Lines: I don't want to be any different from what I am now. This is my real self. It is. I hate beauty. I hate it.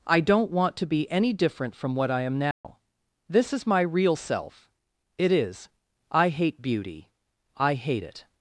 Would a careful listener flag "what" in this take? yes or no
no